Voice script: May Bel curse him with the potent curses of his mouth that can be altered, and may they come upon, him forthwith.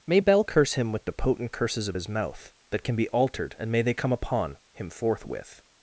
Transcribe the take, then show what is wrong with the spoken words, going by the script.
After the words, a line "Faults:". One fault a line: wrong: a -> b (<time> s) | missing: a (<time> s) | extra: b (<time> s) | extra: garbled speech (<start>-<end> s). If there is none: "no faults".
May Bel curse him with the potent curses of his mouth that can be altered, and may they come upon, him forthwith.
Faults:
no faults